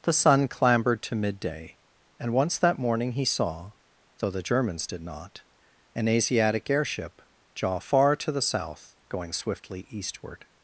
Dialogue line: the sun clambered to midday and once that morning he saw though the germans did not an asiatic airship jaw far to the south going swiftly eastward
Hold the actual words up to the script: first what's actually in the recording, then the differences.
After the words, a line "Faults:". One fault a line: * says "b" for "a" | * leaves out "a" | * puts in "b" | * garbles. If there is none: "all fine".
the sun clambered to midday and once that morning he saw though the germans did not an asiatic airship jaw far to the south going swiftly eastward
Faults:
all fine